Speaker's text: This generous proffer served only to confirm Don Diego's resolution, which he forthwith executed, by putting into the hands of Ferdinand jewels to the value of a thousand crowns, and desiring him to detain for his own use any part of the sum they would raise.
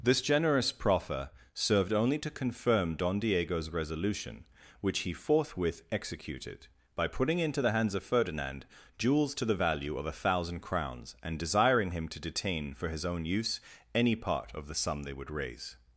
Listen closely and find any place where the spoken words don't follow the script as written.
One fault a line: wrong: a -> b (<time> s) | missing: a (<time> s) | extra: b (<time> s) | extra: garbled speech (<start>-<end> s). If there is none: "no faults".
no faults